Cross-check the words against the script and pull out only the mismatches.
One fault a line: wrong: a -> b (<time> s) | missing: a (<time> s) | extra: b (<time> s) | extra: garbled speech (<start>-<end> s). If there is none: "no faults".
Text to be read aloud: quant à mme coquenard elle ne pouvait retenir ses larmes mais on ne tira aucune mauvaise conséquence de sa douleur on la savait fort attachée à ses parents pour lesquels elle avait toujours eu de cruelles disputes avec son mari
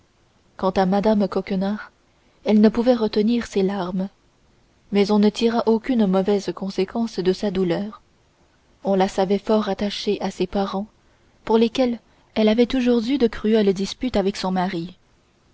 no faults